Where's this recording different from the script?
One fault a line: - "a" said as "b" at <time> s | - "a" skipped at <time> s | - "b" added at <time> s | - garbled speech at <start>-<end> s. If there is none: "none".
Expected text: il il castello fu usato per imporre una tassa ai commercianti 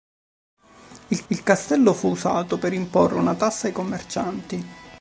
none